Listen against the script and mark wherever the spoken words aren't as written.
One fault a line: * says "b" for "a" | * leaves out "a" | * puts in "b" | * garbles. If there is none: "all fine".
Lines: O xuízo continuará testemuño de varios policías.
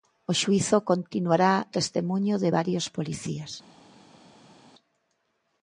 all fine